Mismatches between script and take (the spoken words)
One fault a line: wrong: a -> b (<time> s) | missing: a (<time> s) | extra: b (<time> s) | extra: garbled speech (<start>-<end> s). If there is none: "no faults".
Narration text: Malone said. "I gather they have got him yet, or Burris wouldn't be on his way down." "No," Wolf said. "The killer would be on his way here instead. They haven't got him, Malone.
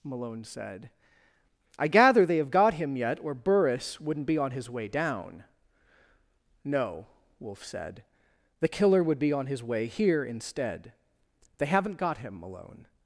no faults